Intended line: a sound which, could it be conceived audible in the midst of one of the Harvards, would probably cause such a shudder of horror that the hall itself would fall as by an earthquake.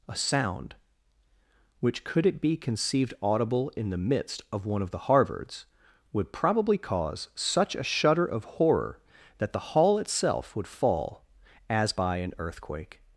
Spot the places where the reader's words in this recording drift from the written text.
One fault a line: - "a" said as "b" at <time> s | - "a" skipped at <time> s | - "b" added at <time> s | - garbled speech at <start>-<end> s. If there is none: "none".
none